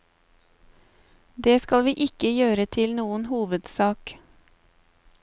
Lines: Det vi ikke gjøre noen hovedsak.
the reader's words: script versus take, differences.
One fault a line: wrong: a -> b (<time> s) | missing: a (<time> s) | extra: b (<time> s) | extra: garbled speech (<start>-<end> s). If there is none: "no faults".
extra: skal (1.6 s)
extra: til (2.8 s)